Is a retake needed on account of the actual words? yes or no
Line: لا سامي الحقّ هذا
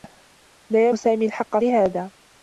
no